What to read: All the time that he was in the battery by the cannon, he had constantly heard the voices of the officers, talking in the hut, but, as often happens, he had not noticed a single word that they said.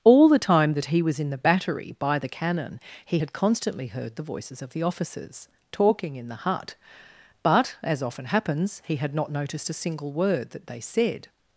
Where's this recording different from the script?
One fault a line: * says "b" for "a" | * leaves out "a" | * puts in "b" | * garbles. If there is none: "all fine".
all fine